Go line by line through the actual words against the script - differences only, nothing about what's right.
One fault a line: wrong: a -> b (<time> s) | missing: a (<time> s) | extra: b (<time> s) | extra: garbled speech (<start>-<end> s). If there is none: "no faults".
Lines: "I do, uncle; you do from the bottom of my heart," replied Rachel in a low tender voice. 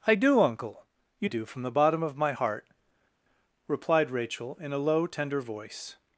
no faults